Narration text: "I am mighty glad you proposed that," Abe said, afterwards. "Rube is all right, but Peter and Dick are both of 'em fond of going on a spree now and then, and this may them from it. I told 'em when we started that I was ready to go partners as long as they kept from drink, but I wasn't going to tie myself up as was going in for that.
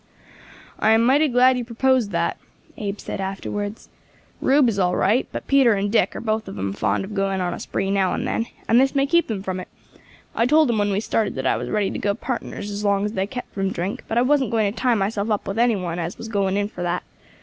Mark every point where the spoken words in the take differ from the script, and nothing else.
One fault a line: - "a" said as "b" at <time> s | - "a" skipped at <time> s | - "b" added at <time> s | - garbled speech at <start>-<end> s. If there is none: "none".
- "keep" added at 9.1 s
- "with any one" added at 15.5 s